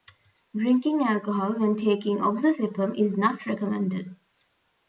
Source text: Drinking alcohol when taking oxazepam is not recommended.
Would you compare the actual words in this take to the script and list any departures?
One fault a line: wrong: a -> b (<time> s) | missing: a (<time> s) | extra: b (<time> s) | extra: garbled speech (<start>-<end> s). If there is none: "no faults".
no faults